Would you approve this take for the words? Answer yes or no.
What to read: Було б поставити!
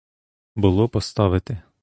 yes